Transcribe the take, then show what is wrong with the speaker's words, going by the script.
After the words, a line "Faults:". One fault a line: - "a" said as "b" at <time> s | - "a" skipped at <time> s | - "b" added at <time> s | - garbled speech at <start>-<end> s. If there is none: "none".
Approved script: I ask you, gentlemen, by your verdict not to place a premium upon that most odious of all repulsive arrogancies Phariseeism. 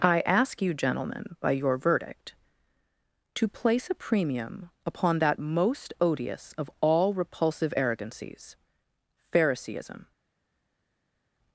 I ask you, gentlemen, by your verdict to place a premium upon that most odious of all repulsive arrogancies Phariseeism.
Faults:
- "not" skipped at 2.3 s